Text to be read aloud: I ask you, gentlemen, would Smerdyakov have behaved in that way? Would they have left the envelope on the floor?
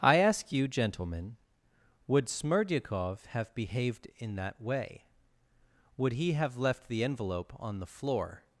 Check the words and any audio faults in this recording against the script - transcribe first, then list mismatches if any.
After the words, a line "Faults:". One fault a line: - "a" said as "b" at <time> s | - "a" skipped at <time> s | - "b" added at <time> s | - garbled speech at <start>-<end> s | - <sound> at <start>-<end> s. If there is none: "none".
I ask you, gentlemen, would Smerdyakov have behaved in that way? Would he have left the envelope on the floor?
Faults:
- "they" said as "he" at 6.1 s